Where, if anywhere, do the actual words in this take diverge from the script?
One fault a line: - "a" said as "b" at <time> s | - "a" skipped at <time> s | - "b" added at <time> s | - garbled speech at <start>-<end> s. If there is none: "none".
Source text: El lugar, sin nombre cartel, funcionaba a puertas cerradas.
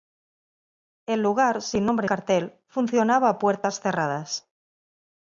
none